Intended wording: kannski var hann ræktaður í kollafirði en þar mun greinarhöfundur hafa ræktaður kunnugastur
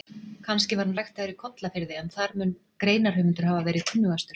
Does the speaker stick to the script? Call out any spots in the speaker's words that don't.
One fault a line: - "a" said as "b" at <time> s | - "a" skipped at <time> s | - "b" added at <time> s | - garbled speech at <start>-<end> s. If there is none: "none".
- "ræktaður" said as "verið" at 3.7 s